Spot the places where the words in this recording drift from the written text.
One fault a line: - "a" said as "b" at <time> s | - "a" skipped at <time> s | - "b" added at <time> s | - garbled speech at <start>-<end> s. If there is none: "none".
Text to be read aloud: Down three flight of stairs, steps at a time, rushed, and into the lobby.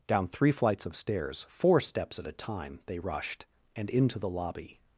- "flight" said as "flights" at 0.5 s
- "four" added at 1.5 s
- "they" added at 2.9 s